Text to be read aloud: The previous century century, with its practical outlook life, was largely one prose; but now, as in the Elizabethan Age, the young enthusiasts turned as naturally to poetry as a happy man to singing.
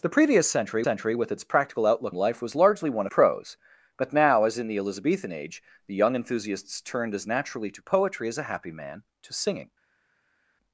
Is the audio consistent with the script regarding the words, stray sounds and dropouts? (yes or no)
yes